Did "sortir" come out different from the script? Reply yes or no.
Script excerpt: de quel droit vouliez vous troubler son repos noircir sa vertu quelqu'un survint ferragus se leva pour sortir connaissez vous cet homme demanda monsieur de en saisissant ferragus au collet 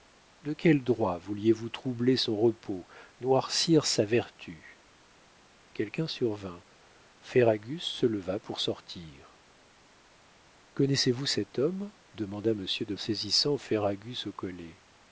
no